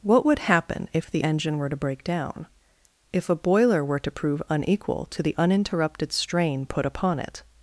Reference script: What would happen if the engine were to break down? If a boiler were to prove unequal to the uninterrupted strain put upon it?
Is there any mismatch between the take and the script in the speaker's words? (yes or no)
no